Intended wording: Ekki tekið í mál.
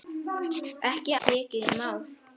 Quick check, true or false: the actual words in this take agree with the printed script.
true